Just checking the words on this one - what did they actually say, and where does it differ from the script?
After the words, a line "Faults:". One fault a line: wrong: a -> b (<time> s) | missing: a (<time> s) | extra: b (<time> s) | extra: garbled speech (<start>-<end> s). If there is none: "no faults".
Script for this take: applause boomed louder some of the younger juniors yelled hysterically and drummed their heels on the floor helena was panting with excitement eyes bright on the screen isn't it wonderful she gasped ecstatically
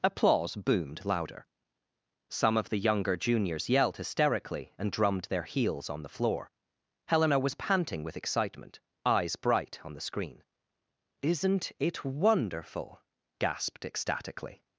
applause boomed louder some of the younger juniors yelled hysterically and drummed their heels on the floor helena was panting with excitement eyes bright on the screen isn't it wonderful gasped ecstatically
Faults:
missing: she (13.0 s)